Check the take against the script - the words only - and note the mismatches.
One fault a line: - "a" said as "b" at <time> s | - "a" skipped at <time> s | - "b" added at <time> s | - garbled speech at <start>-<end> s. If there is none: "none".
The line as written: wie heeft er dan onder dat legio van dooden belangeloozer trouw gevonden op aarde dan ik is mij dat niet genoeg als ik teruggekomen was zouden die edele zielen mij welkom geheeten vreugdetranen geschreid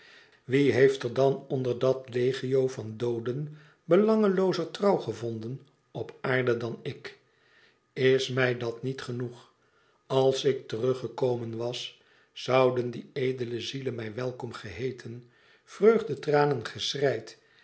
none